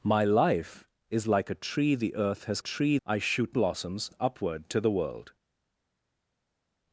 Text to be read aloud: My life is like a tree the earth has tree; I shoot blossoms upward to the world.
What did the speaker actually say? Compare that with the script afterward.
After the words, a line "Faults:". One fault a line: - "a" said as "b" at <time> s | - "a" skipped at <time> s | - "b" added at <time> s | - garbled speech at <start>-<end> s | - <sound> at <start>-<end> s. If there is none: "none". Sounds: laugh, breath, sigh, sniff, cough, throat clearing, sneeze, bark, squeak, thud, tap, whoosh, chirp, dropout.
My life is like a tree the earth has tree; I shoot blossoms upward to the world.
Faults:
none